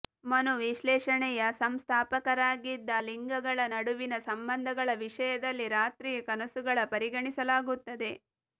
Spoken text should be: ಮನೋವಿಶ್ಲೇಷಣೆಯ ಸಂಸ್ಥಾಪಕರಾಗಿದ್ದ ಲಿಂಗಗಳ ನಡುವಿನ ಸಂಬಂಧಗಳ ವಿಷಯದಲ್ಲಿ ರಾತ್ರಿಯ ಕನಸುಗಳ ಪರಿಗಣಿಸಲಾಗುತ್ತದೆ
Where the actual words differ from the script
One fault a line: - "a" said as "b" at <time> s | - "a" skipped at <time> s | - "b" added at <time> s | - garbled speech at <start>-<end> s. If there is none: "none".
none